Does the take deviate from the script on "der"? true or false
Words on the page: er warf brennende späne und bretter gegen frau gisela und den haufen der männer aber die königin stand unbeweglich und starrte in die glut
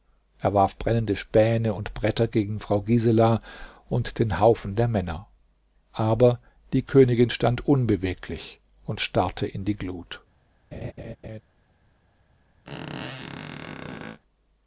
false